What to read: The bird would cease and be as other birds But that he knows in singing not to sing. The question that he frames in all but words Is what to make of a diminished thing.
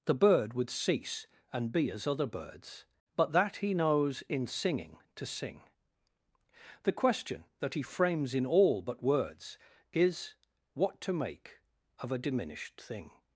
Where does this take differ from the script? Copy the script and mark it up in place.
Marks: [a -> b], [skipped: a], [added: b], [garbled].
The bird would cease and be as other birds But that he knows in singing [skipped: not] to sing. The question that he frames in all but words Is what to make of a diminished thing.